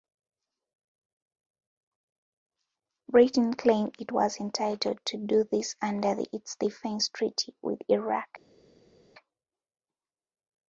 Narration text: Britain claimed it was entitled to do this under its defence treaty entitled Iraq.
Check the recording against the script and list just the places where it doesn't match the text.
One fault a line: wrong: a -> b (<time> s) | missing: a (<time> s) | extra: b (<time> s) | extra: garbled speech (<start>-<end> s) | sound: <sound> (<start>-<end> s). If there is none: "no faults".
wrong: entitled -> with (7.6 s)